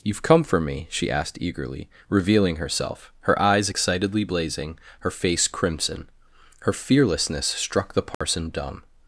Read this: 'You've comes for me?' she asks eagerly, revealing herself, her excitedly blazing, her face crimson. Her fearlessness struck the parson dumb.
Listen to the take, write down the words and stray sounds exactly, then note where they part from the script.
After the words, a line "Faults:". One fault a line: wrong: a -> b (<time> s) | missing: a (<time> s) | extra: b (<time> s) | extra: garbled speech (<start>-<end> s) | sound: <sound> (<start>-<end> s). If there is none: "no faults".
'You've come for me?' she asked eagerly, revealing herself, her eyes excitedly blazing, her face crimson. Her fearlessness struck the parson dumb.
Faults:
wrong: comes -> come (0.2 s)
wrong: asks -> asked (1.1 s)
extra: eyes (3.4 s)
sound: dropout (8.1-8.2 s)